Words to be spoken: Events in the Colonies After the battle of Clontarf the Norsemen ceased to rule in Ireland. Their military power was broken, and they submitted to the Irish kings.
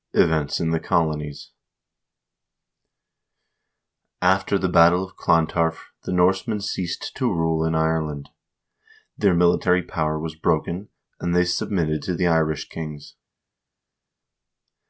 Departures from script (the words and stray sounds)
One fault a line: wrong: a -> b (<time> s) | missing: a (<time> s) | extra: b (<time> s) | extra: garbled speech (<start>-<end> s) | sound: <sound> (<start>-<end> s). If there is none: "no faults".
no faults